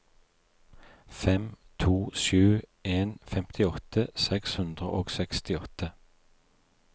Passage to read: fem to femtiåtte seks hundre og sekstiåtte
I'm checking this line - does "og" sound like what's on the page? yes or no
yes